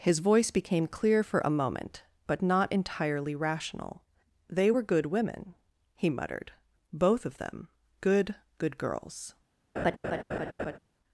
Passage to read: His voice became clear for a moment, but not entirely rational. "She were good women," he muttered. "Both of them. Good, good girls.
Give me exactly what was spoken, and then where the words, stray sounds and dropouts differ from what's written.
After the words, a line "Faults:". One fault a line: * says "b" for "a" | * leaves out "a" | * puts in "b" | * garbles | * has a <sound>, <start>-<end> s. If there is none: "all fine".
His voice became clear for a moment, but not entirely rational. "They were good women," he muttered. "Both of them. Good, good girls.
Faults:
* says "They" for "She"
* has a laugh, 9.8-10.8 s